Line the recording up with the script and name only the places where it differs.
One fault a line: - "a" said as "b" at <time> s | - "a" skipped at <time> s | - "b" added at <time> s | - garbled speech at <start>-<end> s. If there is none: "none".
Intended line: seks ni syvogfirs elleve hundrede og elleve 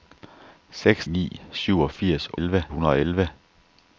none